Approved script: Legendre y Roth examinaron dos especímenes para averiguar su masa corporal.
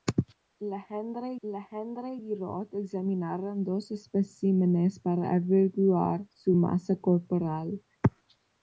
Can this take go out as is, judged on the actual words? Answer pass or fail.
fail